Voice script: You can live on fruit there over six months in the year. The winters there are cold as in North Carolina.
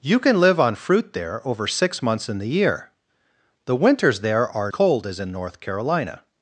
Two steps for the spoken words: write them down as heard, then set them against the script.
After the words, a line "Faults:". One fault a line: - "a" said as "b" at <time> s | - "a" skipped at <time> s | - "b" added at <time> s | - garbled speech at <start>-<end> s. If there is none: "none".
You can live on fruit there over six months in the year. The winters there are cold as in North Carolina.
Faults:
none